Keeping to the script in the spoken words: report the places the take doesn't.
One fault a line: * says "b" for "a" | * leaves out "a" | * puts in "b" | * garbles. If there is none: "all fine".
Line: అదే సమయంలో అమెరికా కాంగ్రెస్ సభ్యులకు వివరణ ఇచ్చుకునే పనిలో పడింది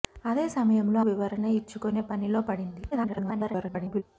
* leaves out "అమెరికా కాంగ్రెస్ సభ్యులకు"
* garbles